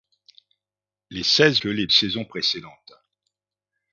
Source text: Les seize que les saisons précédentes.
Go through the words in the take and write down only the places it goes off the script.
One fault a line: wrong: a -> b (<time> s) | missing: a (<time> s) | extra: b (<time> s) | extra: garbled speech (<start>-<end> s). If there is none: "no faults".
no faults